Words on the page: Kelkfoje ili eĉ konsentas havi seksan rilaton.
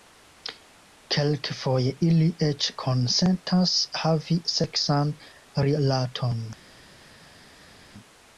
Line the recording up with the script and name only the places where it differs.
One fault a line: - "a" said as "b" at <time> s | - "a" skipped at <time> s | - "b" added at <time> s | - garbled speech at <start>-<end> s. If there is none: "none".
none